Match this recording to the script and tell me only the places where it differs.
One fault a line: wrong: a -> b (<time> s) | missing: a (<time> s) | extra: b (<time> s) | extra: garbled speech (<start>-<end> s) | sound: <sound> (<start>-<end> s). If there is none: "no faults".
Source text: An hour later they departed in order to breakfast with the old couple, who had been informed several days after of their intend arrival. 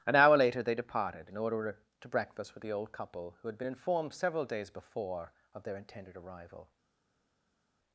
wrong: after -> before (4.7 s)
wrong: intend -> intended (5.7 s)